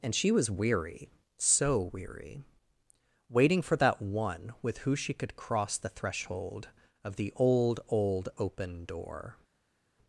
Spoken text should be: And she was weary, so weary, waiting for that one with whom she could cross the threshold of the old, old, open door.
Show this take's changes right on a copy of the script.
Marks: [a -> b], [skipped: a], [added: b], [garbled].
And she was weary, so weary, waiting for that one with [whom -> who] she could cross the threshold of the old, old, open door.